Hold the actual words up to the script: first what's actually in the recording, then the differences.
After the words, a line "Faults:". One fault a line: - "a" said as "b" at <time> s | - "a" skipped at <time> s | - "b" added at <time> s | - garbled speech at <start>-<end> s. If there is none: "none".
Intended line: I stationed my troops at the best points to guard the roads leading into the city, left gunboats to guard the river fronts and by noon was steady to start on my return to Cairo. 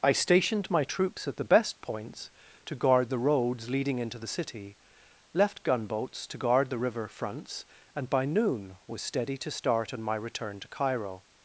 I stationed my troops at the best points to guard the roads leading into the city, left gunboats to guard the river fronts and by noon was steady to start on my return to Cairo.
Faults:
none